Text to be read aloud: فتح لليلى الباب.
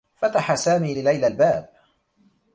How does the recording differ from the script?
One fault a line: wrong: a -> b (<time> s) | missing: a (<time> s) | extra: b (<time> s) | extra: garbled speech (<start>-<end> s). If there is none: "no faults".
extra: سامي (0.6 s)